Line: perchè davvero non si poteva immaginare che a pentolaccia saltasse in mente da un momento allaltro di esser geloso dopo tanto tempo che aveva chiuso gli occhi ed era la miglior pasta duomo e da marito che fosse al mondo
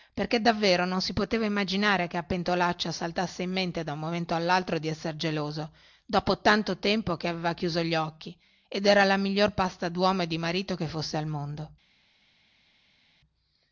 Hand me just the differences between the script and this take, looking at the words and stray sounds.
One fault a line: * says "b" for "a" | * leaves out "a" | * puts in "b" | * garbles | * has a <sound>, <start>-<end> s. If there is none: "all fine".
* says "di" for "da"